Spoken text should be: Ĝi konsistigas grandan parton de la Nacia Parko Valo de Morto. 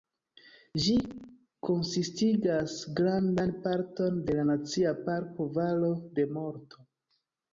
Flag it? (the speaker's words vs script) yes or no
no